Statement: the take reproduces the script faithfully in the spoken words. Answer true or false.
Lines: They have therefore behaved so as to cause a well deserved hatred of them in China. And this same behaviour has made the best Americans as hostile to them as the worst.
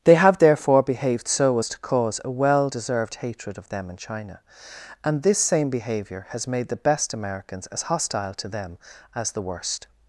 true